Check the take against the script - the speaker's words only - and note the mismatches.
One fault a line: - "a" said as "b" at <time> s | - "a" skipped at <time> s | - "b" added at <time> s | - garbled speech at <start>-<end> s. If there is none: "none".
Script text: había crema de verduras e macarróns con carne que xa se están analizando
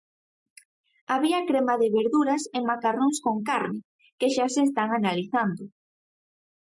none